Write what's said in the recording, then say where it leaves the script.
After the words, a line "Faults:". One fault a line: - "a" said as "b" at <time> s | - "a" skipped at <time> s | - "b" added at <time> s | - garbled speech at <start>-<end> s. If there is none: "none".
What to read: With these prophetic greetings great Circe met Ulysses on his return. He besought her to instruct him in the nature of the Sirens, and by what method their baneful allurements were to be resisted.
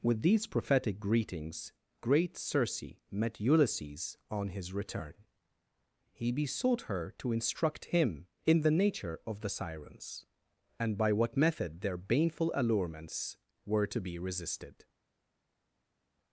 With these prophetic greetings great Circe met Ulysses on his return. He besought her to instruct him in the nature of the Sirens, and by what method their baneful allurements were to be resisted.
Faults:
none